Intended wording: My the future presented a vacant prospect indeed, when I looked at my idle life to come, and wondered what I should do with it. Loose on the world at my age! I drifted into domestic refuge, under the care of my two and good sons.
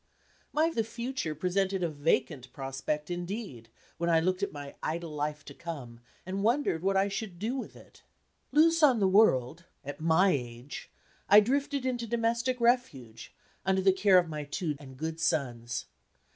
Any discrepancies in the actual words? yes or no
no